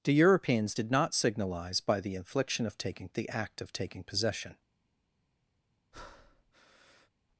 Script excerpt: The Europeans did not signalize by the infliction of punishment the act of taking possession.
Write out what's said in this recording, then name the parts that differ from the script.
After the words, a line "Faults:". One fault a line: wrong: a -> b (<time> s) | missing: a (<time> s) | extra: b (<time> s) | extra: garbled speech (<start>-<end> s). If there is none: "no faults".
The Europeans did not signalize by the infliction of taking the act of taking possession.
Faults:
wrong: punishment -> taking (2.8 s)